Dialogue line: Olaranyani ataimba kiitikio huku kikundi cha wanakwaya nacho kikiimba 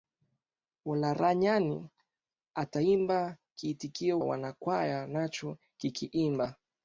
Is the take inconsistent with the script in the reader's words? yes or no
yes